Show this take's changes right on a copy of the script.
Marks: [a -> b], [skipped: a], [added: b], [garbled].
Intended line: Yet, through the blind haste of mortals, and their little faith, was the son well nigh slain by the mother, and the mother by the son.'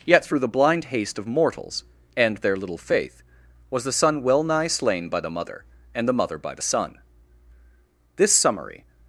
Yet, through the blind haste of mortals, and their little faith, was the son well nigh slain by the mother, and the mother by the son.' [added: This summary]